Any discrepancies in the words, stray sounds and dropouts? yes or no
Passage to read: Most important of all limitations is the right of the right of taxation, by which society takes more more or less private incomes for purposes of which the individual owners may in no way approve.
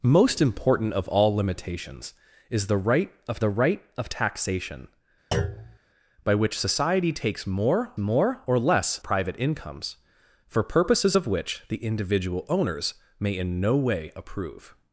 yes